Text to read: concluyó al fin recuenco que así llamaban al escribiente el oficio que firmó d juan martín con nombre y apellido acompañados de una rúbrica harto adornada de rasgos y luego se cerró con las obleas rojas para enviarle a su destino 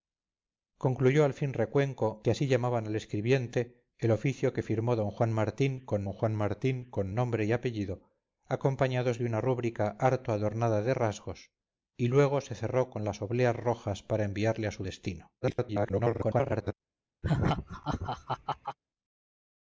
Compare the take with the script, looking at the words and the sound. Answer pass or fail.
fail